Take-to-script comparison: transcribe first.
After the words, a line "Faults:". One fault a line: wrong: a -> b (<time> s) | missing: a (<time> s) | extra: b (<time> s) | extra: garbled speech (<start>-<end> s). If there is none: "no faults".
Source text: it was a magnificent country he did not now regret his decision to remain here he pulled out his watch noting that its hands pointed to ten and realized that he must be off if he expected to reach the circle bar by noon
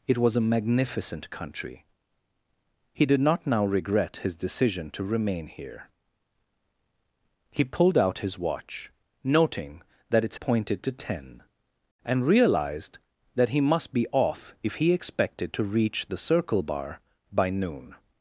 it was a magnificent country he did not now regret his decision to remain here he pulled out his watch noting that its pointed to ten and realized that he must be off if he expected to reach the circle bar by noon
Faults:
missing: hands (10.4 s)